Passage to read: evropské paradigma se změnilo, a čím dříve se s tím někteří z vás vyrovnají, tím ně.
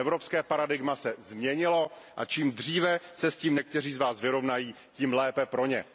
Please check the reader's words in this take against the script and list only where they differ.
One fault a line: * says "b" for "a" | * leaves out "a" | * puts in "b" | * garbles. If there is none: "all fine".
* puts in "lépe pro"